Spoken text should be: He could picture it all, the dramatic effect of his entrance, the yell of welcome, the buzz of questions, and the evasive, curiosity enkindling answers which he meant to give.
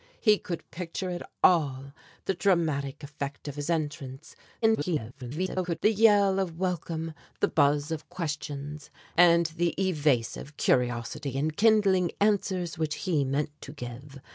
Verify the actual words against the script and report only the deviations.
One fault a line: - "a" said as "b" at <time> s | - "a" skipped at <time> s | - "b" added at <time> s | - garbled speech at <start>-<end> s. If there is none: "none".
- garbled speech at 4.6-5.8 s